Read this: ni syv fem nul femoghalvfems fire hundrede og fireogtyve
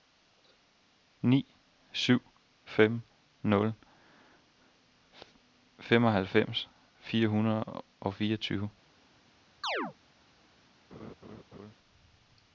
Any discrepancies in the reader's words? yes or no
no